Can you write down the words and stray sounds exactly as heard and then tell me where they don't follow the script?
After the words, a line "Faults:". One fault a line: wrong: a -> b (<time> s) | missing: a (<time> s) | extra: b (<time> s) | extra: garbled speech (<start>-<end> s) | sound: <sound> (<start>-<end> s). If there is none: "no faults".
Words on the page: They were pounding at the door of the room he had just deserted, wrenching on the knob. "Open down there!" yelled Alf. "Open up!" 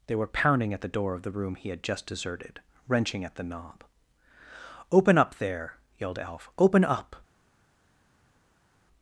They were pounding at the door of the room he had just deserted, wrenching at the knob. "Open up there!" yelled Alf. "Open up!"
Faults:
wrong: on -> at (3.2 s)
wrong: down -> up (5.2 s)